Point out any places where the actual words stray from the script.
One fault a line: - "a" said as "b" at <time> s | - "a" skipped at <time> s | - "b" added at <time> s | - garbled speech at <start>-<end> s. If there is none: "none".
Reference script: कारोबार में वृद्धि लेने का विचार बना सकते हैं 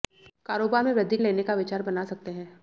none